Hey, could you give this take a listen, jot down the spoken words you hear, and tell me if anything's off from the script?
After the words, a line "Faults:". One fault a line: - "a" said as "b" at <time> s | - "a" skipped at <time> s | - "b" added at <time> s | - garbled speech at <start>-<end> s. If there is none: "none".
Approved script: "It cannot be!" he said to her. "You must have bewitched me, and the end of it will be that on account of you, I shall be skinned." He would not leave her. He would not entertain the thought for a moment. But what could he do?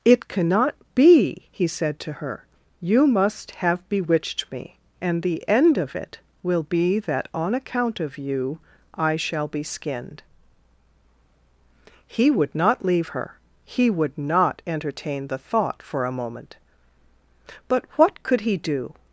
"It cannot be!" he said to her. "You must have bewitched me, and the end of it will be that on account of you, I shall be skinned." He would not leave her. He would not entertain the thought for a moment. But what could he do?
Faults:
none